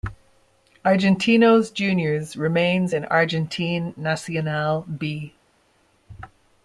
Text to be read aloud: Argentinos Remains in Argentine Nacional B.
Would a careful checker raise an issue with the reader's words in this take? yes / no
yes